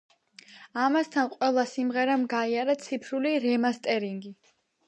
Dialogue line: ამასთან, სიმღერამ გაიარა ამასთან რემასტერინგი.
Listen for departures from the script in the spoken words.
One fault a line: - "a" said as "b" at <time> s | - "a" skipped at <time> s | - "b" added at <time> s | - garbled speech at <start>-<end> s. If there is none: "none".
- "ყველა" added at 1.3 s
- "ამასთან" said as "ციფრული" at 2.9 s